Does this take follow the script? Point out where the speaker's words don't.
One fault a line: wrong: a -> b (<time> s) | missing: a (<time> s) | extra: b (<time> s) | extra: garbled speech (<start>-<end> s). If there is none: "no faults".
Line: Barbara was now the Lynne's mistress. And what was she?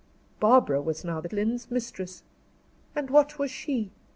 no faults